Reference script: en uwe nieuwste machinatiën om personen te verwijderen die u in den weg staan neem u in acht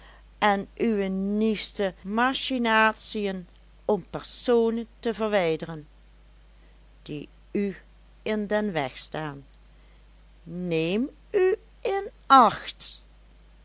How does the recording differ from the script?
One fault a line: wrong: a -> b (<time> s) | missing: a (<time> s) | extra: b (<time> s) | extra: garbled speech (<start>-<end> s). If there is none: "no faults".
no faults